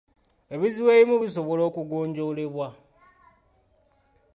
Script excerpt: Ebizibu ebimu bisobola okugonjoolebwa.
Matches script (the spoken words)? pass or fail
pass